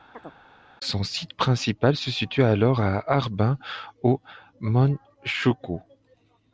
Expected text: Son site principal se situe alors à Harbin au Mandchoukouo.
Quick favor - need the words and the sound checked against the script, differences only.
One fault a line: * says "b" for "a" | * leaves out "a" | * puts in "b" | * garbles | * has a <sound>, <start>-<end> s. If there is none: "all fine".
* has a chirp, 0.1-0.4 s